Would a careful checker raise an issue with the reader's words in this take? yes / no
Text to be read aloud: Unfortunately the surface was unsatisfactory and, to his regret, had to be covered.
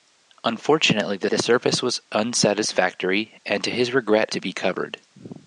yes